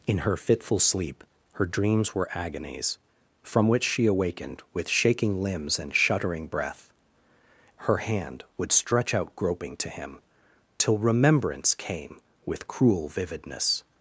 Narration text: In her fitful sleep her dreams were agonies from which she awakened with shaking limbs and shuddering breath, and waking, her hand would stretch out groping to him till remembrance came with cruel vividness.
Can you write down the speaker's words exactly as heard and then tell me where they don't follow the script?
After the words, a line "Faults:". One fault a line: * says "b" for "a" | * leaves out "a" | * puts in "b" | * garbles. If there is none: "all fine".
In her fitful sleep her dreams were agonies from which she awakened with shaking limbs and shuddering breath, her hand would stretch out groping to him till remembrance came with cruel vividness.
Faults:
* leaves out "and waking"